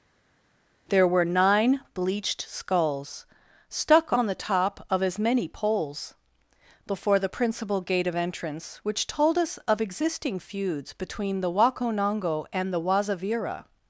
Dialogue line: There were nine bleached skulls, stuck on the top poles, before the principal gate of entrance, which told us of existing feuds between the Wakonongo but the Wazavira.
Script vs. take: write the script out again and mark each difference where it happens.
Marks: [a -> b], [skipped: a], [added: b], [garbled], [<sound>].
There were nine bleached skulls, stuck on the top [added: of as many] poles, before the principal gate of entrance, which told us of existing feuds between the Wakonongo [but -> and] the Wazavira.